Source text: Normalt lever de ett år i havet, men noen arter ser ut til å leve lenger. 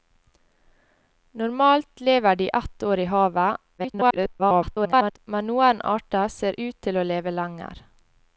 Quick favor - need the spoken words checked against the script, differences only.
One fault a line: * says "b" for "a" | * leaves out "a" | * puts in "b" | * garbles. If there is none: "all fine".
* garbles